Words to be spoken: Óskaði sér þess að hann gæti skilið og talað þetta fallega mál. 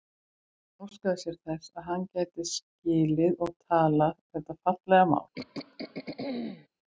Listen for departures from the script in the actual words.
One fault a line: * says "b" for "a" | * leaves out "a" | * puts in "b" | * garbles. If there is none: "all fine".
all fine